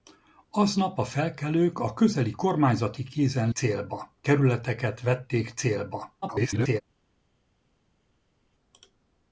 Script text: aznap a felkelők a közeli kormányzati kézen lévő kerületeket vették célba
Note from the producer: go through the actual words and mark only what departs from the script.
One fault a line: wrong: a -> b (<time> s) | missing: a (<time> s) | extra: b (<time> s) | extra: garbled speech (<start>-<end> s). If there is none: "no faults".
wrong: lévő -> célba (3.5 s)
extra: garbled speech (6.2-6.8 s)